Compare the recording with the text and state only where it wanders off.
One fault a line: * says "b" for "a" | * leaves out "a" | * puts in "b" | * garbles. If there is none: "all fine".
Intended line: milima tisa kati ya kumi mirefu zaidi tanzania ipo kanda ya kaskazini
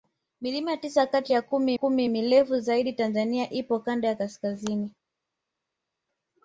* puts in "kumi"